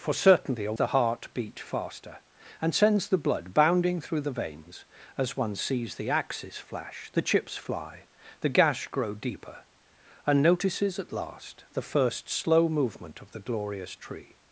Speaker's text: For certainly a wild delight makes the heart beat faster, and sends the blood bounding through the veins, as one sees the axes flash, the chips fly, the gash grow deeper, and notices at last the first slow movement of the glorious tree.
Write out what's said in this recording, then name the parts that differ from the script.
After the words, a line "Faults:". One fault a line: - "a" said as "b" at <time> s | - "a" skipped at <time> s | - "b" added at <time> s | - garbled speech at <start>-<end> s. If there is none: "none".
For certainly a the heart beat faster, and sends the blood bounding through the veins, as one sees the axes flash, the chips fly, the gash grow deeper, and notices at last the first slow movement of the glorious tree.
Faults:
- "wild delight makes" skipped at 0.7 s